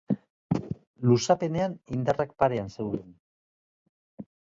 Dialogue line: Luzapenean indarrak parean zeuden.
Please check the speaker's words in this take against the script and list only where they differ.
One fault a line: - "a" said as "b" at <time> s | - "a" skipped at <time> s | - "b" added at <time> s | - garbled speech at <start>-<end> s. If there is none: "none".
none